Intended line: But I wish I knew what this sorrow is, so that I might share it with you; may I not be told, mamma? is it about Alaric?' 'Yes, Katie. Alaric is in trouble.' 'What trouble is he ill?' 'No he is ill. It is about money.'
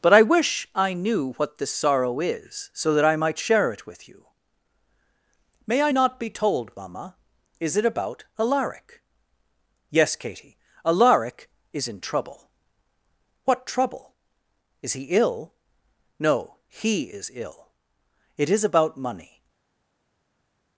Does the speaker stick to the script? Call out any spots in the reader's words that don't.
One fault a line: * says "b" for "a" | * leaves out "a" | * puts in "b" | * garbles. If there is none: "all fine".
all fine